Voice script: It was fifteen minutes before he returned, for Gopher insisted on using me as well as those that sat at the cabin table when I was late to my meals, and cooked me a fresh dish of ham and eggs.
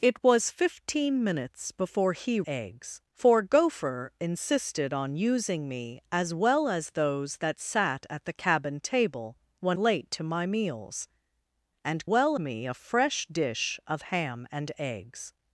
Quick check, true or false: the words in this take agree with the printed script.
false